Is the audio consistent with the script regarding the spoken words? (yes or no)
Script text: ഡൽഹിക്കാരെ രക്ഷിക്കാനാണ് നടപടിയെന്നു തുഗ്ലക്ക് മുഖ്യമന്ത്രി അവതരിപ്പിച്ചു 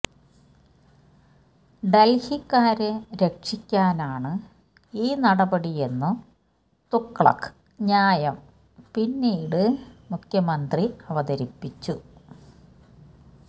no